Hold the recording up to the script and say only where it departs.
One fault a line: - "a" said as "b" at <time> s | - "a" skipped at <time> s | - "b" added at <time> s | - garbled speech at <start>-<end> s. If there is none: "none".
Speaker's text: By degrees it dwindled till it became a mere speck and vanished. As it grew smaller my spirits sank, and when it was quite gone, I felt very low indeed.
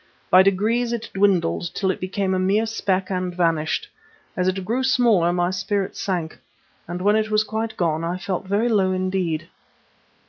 none